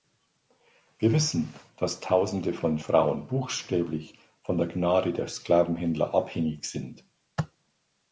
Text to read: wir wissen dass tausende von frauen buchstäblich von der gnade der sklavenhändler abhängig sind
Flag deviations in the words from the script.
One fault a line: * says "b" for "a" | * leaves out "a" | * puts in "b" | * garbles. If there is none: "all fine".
all fine